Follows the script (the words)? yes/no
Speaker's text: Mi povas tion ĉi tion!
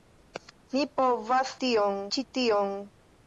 yes